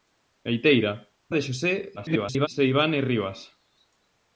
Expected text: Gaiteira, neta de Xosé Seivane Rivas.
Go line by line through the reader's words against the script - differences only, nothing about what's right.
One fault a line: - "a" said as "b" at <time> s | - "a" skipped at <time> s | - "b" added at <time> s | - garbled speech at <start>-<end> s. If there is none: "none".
- "neta" skipped at 0.9 s
- garbled speech at 2.0-2.5 s